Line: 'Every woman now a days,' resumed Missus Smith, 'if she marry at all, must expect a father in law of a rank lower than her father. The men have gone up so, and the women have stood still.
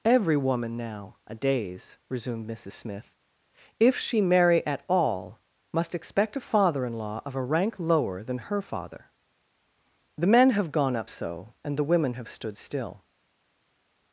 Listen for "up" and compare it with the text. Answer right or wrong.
right